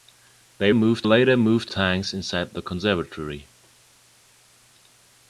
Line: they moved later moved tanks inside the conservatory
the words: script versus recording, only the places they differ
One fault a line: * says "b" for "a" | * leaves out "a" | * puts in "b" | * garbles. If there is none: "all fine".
all fine